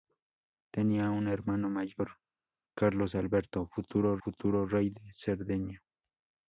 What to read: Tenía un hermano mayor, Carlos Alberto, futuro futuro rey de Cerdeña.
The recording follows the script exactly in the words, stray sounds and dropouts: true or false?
true